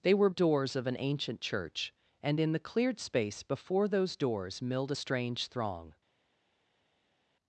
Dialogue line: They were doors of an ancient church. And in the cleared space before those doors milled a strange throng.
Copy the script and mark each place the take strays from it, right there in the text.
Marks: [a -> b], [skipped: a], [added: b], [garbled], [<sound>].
They were doors of an ancient church. And in the cleared space before those doors milled a strange throng.